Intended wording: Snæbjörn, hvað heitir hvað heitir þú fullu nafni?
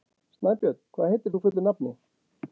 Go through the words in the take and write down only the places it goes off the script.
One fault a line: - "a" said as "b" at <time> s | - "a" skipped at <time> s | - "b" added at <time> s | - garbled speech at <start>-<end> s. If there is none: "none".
- "hvað heitir" skipped at 1.4 s